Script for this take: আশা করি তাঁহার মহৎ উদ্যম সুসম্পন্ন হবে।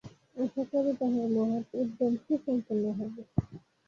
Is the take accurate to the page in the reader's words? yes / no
yes